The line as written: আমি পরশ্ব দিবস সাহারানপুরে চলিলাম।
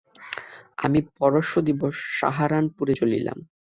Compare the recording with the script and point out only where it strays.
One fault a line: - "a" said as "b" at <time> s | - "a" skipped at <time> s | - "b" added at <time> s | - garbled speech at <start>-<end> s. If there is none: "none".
none